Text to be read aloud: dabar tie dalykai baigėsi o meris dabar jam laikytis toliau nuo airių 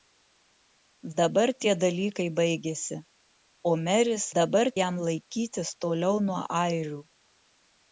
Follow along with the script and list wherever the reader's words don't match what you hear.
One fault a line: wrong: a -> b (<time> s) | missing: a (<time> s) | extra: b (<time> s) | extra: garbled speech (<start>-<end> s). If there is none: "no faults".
no faults